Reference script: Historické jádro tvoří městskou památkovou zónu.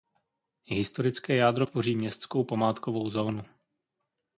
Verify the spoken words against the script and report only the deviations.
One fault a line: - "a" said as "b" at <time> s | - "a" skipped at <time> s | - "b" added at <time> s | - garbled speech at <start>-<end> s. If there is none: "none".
none